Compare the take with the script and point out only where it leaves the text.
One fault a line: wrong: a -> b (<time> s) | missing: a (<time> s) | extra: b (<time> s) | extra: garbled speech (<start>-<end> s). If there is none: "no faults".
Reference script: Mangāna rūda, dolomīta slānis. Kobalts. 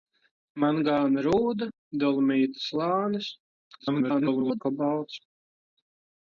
extra: garbled speech (3.8-4.6 s)